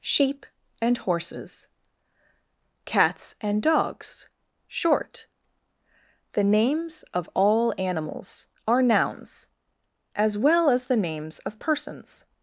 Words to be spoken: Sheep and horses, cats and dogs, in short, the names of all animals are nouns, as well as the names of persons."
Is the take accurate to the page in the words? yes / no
no